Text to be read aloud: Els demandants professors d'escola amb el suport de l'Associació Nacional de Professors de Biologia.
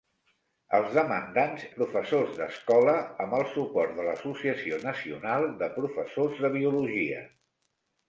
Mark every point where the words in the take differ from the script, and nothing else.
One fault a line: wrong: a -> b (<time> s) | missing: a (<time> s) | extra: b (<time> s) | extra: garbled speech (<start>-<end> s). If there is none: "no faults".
no faults